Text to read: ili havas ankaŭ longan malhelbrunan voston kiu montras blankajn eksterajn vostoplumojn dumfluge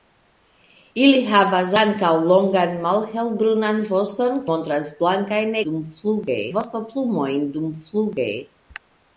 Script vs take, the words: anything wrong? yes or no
yes